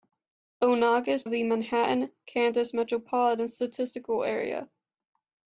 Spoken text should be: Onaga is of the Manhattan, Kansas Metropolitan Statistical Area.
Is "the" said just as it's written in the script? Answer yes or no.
yes